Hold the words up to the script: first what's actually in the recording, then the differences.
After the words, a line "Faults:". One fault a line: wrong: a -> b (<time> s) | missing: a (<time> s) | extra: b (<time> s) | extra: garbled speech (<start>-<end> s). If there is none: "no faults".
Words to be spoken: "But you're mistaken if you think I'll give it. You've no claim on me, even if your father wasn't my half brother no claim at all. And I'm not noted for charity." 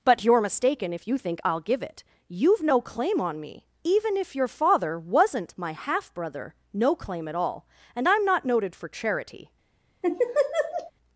"But you're mistaken if you think I'll give it. You've no claim on me, even if your father wasn't my half brother no claim at all. And I'm not noted for charity."
Faults:
no faults